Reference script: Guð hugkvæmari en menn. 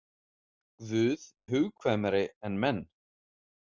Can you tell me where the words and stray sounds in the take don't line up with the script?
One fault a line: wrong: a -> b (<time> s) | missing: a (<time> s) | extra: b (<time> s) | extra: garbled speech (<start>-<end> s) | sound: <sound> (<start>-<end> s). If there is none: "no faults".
no faults